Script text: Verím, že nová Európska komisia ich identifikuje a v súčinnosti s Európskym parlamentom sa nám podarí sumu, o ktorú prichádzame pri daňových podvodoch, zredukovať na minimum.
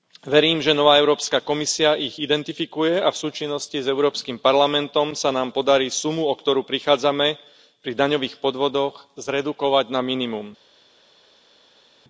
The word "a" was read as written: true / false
true